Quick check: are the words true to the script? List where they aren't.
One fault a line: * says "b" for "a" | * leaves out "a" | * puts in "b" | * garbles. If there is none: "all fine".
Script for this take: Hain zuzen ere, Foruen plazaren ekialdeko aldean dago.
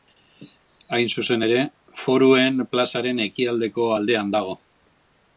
all fine